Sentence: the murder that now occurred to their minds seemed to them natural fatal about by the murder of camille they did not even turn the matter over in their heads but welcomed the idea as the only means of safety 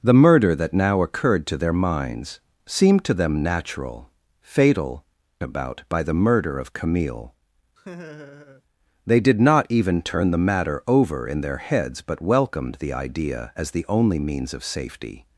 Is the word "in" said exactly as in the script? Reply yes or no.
yes